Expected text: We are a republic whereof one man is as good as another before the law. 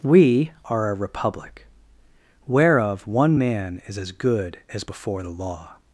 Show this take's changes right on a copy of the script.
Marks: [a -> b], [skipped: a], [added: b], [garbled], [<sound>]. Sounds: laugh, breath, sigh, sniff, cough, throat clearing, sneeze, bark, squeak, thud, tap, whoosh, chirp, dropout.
We are a republic whereof one man is as good as [skipped: another] before the law.